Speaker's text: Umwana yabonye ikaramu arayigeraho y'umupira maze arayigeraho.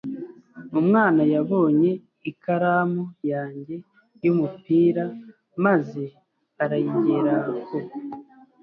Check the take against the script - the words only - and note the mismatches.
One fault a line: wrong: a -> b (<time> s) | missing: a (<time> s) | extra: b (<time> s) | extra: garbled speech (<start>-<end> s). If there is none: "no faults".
wrong: arayigeraho -> yanjye (3.3 s)